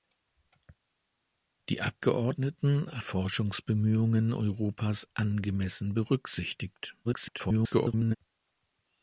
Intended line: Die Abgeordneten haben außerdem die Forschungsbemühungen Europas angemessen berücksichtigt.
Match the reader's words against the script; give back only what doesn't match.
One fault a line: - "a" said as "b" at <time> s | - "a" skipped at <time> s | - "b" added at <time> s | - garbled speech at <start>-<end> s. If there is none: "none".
- "haben außerdem die" skipped at 3.0 s
- garbled speech at 7.0-8.2 s